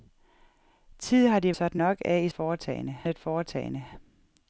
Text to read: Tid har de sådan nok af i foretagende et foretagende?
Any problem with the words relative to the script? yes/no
no